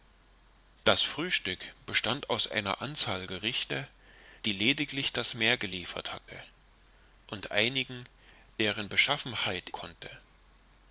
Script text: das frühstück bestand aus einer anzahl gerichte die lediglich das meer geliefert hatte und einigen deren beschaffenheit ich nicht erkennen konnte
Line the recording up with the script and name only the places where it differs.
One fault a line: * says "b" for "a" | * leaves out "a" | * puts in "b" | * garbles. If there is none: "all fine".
* leaves out "ich nicht erkennen"